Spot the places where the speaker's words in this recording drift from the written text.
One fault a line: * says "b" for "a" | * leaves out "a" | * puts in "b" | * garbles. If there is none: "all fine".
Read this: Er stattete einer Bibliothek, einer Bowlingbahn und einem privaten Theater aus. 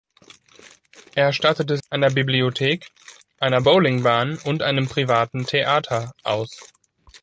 all fine